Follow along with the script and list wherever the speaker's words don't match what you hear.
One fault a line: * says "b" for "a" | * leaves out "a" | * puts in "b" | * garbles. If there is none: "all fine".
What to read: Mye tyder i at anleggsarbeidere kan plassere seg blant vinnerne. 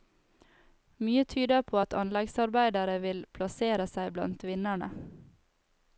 * says "på" for "i"
* says "vil" for "kan"